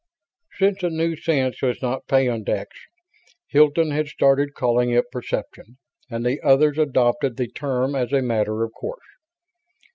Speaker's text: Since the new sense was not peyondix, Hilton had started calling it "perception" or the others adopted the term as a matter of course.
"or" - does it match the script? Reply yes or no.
no